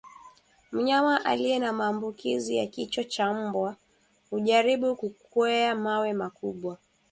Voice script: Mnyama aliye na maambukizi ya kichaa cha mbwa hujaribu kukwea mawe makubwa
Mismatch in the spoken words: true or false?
false